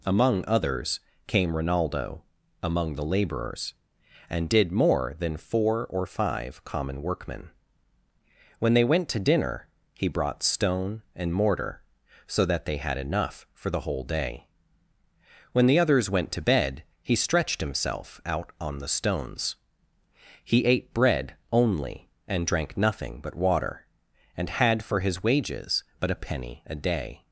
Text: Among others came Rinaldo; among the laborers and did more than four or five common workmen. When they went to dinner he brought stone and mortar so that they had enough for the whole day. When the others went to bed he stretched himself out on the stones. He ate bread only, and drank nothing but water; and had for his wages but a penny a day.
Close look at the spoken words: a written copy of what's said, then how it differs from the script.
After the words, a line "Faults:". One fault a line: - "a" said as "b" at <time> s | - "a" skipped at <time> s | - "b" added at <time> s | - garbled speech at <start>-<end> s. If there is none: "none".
Among others came Rinaldo; among the laborers and did more than four or five common workmen. When they went to dinner he brought stone and mortar so that they had enough for the whole day. When the others went to bed he stretched himself out on the stones. He ate bread only, and drank nothing but water; and had for his wages but a penny a day.
Faults:
none